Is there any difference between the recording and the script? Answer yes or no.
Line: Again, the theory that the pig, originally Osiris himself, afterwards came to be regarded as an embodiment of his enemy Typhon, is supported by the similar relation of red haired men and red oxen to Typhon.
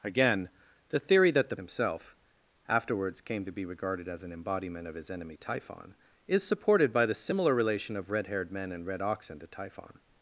yes